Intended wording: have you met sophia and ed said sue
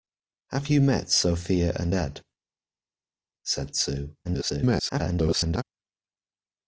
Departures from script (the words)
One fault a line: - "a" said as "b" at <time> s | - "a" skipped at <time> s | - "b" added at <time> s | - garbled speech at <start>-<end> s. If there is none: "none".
- garbled speech at 4.2-5.6 s